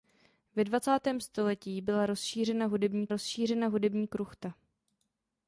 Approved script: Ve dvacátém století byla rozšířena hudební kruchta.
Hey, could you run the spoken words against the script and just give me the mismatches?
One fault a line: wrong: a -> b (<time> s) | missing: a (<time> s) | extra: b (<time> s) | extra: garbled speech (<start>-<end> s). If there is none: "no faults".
extra: rozšířena hudební (3.1 s)